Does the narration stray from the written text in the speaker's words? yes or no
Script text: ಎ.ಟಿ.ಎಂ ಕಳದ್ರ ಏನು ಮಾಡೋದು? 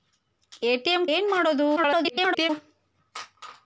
yes